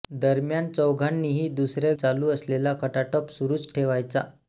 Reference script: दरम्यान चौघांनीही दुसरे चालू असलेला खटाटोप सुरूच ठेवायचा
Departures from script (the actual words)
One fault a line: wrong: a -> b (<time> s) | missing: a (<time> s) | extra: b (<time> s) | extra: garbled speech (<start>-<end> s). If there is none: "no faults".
no faults